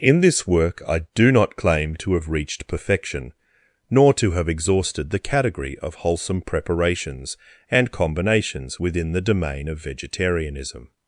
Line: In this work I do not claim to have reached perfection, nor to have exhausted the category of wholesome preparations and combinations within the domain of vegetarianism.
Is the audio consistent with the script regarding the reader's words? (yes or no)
yes